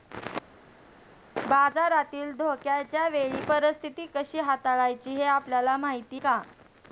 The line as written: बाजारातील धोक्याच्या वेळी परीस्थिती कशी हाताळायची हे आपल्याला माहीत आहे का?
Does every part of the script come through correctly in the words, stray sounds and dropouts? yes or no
no